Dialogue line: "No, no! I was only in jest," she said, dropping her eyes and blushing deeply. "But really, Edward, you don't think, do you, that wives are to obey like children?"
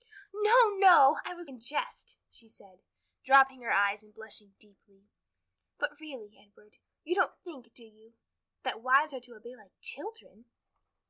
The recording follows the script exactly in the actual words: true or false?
false